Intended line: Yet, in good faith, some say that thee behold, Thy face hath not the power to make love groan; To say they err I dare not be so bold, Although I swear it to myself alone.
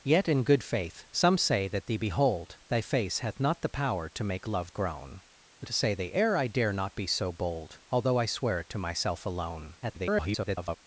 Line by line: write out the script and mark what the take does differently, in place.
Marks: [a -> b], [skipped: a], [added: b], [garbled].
Yet, in good faith, some say that thee behold, Thy face hath not the power to make love groan; To say they err I dare not be so bold, Although I swear it to myself alone. [garbled]